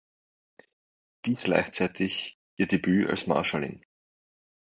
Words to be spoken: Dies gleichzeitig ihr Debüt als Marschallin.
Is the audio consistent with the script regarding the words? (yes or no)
yes